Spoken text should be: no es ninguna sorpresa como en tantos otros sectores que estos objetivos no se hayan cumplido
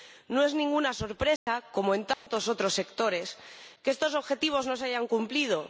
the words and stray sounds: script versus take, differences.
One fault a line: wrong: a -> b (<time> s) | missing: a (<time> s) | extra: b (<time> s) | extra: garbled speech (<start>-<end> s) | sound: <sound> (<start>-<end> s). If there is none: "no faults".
sound: dropout (1.4-1.5 s)
sound: dropout (2.1-2.3 s)